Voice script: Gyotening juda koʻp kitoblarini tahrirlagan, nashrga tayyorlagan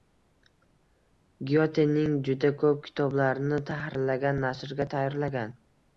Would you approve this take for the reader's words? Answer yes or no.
yes